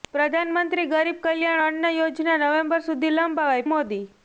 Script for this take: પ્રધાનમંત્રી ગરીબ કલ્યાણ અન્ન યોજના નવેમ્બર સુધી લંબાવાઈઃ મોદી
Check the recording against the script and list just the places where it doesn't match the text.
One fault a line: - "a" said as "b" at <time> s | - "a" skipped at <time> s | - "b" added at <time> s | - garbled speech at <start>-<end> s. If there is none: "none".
none